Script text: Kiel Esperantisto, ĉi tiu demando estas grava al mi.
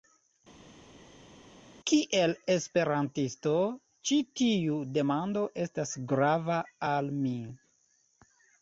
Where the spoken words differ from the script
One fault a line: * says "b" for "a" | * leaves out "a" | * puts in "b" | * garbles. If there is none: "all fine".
all fine